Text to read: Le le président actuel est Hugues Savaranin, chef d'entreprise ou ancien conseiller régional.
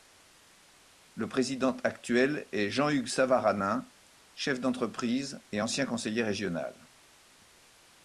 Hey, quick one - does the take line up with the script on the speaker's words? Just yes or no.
no